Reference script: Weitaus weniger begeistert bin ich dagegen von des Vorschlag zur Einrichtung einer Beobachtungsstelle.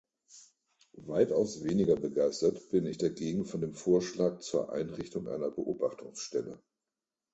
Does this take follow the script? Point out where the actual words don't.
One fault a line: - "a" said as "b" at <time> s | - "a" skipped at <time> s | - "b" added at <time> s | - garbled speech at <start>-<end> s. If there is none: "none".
- "des" said as "dem" at 3.6 s